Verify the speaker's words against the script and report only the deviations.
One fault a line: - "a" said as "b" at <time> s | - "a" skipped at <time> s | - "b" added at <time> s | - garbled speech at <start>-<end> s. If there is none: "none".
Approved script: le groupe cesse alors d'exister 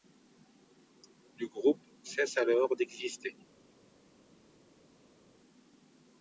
none